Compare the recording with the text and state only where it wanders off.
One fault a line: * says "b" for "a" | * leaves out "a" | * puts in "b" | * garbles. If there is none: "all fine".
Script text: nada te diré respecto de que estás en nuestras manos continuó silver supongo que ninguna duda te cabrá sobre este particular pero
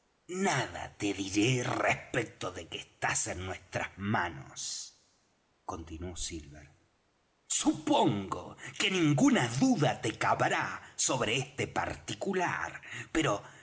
all fine